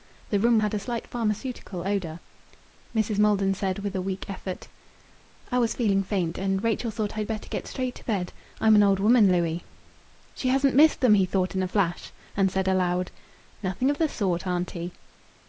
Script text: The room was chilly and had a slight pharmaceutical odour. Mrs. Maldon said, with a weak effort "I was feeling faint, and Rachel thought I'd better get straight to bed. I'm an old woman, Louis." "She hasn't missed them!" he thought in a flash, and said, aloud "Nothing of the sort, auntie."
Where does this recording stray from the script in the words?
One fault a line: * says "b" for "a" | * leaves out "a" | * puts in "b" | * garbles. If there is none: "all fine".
* leaves out "was chilly and"